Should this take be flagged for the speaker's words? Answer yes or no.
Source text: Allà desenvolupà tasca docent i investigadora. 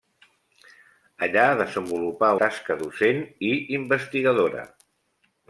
no